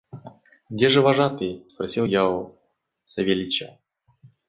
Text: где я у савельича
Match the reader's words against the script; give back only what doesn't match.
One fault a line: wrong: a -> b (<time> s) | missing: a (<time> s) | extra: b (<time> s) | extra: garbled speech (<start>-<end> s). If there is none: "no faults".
extra: же вожатый спросил (0.9 s)